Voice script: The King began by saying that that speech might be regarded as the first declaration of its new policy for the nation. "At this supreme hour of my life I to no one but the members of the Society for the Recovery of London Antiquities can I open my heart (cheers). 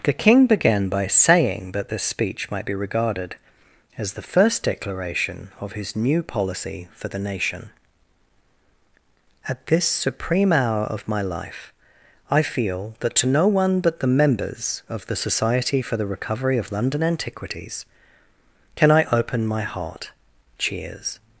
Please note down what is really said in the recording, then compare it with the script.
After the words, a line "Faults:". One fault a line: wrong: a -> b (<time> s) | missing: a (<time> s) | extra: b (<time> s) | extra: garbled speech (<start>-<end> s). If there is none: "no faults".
The King began by saying that this speech might be regarded as the first declaration of his new policy for the nation. "At this supreme hour of my life I feel that to no one but the members of the Society for the Recovery of London Antiquities can I open my heart (cheers).
Faults:
wrong: that -> this (1.9 s)
wrong: its -> his (5.7 s)
extra: feel that (12.4 s)